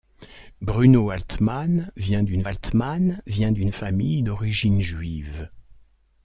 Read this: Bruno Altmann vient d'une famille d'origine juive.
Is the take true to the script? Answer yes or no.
no